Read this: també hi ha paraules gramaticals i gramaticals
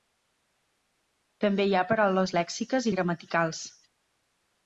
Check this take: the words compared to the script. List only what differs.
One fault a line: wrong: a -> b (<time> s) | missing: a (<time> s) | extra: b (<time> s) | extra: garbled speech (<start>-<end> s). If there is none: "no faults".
wrong: gramaticals -> lèxiques (2.4 s)